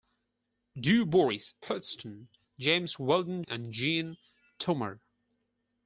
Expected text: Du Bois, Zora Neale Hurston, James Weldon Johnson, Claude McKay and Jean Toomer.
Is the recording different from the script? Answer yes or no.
yes